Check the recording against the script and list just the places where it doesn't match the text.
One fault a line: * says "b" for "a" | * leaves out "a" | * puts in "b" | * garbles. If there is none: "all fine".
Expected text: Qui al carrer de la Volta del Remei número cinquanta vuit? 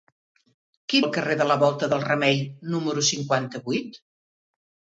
all fine